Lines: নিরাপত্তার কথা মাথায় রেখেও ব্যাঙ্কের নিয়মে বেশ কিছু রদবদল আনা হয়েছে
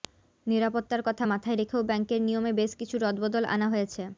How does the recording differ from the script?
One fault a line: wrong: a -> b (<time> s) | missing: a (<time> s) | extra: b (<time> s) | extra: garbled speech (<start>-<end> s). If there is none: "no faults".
no faults